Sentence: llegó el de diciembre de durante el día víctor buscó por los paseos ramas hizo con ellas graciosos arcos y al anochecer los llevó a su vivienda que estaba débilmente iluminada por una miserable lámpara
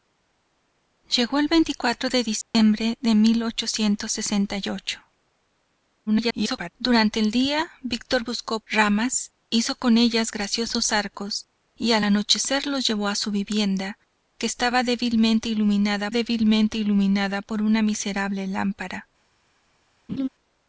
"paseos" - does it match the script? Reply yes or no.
no